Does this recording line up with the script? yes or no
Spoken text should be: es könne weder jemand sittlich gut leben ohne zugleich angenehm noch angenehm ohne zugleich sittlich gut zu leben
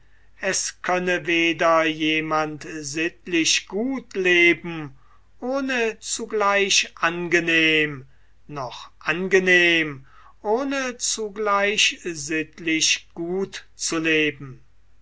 yes